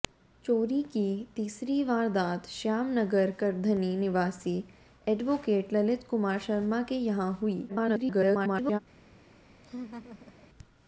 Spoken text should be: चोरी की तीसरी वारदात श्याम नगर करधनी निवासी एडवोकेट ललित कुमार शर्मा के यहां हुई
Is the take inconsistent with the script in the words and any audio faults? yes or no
yes